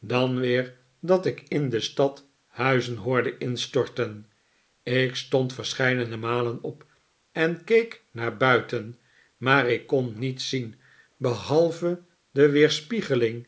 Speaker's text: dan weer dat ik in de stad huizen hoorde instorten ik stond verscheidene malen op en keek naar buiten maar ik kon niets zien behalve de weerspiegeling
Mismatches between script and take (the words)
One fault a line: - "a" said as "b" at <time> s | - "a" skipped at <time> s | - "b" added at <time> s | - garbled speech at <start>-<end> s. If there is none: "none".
none